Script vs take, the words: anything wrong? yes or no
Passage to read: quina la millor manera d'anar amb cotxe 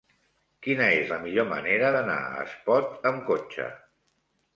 yes